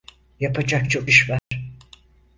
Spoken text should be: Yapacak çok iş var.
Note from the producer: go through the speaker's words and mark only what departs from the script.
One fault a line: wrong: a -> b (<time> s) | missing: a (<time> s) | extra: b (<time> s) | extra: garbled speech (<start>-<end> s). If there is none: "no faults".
no faults